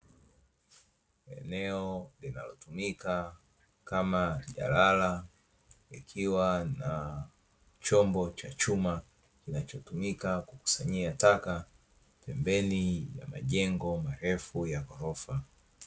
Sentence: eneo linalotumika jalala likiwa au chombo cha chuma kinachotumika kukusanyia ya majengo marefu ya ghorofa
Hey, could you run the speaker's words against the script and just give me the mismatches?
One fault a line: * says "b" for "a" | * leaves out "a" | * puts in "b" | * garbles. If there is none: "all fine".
* puts in "kama"
* says "na" for "au"
* puts in "taka pembeni"